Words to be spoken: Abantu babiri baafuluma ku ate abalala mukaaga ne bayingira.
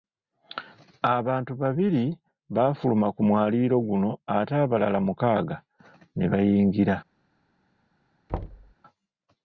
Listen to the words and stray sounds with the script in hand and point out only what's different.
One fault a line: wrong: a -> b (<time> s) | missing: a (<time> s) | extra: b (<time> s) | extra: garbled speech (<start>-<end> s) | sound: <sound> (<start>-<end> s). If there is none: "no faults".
extra: mwaliiro guno (3.3 s)
sound: thud (8.3-8.7 s)